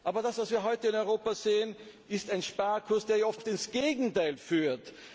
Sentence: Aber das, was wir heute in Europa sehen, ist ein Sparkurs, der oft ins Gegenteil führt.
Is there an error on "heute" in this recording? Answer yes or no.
no